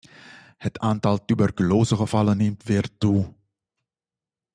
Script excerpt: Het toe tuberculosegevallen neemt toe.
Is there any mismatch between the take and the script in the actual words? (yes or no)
yes